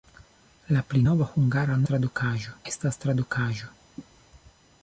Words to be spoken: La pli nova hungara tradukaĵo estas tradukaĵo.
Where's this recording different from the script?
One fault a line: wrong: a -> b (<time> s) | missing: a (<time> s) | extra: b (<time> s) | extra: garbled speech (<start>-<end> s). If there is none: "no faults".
no faults